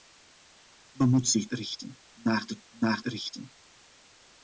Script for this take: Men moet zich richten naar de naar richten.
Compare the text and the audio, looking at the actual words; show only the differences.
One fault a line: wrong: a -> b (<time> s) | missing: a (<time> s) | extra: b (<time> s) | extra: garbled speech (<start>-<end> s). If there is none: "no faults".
no faults